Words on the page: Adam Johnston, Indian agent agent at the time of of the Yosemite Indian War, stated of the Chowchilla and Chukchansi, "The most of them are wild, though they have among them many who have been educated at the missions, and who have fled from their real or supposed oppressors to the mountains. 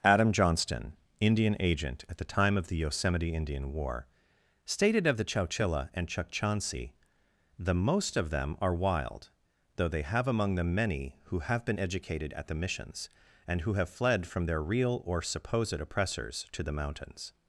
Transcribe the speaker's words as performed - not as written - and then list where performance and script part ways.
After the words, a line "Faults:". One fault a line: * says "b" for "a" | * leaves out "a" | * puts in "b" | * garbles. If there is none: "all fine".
Adam Johnston, Indian agent at the time of the Yosemite Indian War, stated of the Chowchilla and Chukchansi, "The most of them are wild, though they have among them many who have been educated at the missions, and who have fled from their real or supposed oppressors to the mountains.
Faults:
* leaves out "agent"
* leaves out "of"